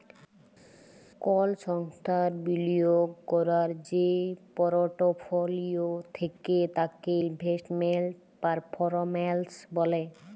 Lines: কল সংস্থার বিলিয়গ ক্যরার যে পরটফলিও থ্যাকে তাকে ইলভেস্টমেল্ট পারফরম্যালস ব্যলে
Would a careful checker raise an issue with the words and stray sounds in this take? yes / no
no